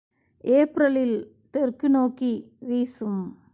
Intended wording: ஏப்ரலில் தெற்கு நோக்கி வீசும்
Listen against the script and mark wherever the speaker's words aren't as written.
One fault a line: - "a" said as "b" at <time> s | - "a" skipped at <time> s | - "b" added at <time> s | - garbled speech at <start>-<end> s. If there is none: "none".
none